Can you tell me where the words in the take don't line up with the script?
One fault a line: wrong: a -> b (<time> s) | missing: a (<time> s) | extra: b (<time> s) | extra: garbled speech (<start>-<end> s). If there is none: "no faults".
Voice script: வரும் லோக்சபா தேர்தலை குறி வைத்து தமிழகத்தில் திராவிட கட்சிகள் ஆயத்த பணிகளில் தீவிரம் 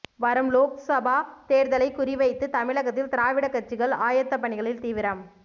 no faults